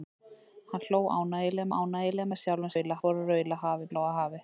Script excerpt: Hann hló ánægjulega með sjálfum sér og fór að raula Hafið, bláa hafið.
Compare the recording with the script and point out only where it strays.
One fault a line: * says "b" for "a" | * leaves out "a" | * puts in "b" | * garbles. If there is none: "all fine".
* puts in "ánægjulega"
* says "raula" for "sér"